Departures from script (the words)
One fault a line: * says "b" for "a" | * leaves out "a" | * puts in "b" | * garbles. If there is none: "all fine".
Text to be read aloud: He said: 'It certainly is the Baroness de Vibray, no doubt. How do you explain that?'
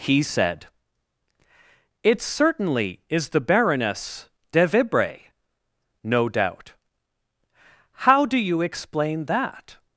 all fine